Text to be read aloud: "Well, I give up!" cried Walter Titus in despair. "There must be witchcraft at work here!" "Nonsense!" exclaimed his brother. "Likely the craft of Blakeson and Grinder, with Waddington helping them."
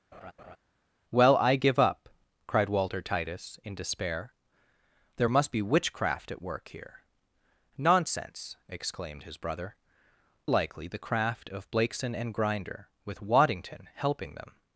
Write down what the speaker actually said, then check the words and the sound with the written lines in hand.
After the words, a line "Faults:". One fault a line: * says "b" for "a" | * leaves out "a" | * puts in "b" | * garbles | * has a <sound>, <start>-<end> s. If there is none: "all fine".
"Well, I give up!" cried Walter Titus in despair. "There must be witchcraft at work here!" "Nonsense!" exclaimed his brother. "Likely the craft of Blakeson and Grinder, with Waddington helping them."
Faults:
* has a laugh, 0.1-0.6 s